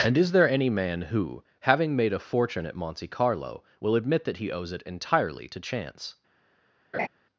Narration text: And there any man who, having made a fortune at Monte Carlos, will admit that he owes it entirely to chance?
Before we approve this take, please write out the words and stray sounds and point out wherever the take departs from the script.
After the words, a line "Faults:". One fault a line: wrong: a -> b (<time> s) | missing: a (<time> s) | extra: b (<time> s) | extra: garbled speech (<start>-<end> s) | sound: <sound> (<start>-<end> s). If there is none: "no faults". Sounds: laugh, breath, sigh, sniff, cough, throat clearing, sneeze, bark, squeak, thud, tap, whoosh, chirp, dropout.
And is there any man who, having made a fortune at Monte Carlo, will admit that he owes it entirely to chance?
Faults:
extra: is (0.2 s)
wrong: Carlos -> Carlo (3.0 s)
sound: laugh (6.9-7.1 s)